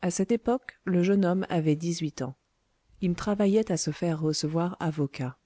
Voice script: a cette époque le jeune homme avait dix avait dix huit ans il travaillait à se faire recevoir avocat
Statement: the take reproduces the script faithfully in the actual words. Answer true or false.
false